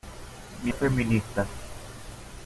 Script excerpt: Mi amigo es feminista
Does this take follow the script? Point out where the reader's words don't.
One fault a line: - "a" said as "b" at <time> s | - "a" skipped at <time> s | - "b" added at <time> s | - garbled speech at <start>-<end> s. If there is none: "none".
- "amigo" skipped at 0.7 s